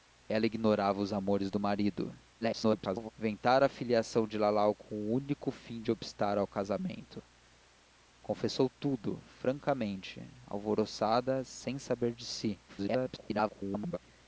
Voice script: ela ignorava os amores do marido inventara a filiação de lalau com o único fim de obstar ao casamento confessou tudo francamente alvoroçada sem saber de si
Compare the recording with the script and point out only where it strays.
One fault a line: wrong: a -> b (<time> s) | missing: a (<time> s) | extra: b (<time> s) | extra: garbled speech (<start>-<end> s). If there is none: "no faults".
extra: garbled speech (2.4-3.1 s)
extra: garbled speech (12.7-14.0 s)